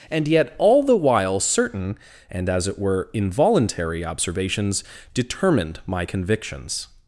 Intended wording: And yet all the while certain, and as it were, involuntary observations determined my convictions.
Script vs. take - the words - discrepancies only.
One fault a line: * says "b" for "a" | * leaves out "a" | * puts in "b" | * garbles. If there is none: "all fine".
all fine